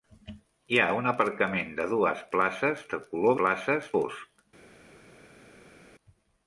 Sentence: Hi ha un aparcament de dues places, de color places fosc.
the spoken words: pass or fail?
pass